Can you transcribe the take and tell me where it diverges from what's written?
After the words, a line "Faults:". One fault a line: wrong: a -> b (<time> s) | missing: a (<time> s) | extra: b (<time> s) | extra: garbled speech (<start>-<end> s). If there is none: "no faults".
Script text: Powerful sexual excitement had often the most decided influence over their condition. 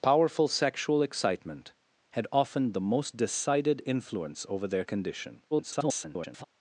Powerful sexual excitement had often the most decided influence over their condition. [garbled]
Faults:
extra: garbled speech (5.5-6.4 s)